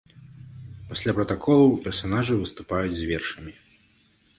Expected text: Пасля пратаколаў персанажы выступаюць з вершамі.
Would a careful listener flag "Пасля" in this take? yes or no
no